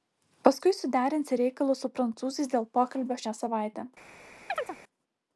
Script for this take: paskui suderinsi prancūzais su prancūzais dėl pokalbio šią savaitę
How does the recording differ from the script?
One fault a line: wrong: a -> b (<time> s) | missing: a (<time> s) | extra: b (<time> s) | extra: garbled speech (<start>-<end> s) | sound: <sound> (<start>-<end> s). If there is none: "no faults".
wrong: prancūzais -> reikalus (1.4 s)
sound: chirp (4.5-4.8 s)